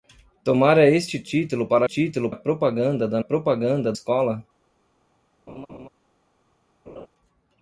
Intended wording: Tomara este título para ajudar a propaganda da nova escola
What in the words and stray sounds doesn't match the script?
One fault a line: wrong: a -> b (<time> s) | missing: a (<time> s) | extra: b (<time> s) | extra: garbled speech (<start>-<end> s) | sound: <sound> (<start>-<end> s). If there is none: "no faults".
wrong: ajudar -> título (1.8 s)
wrong: nova -> propaganda (3.2 s)
sound: laugh (5.5-5.9 s)
sound: laugh (6.9-7.1 s)